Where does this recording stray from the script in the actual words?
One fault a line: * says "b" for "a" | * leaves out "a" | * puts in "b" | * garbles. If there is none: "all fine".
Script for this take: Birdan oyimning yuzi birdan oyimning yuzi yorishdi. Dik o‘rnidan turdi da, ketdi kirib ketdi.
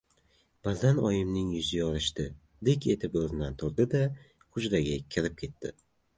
* leaves out "birdan oyimning yuzi"
* puts in "etib"
* says "hujraga" for "ketdi"